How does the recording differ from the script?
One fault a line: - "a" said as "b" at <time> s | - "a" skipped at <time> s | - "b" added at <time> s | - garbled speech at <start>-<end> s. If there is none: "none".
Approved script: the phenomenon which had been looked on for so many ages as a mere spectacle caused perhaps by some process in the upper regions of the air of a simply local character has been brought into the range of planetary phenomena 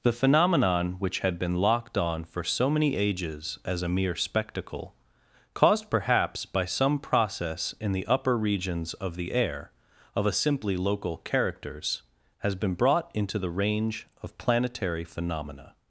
- "looked" said as "locked" at 1.6 s
- "character" said as "characters" at 11.2 s